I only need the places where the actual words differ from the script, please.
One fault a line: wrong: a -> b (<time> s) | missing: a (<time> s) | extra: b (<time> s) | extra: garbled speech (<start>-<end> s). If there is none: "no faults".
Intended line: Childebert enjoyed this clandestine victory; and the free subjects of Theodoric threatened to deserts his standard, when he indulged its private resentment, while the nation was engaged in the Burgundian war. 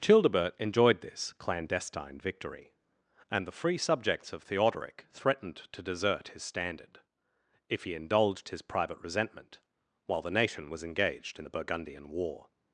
wrong: deserts -> desert (5.8 s)
wrong: when -> if (7.7 s)
wrong: its -> his (8.5 s)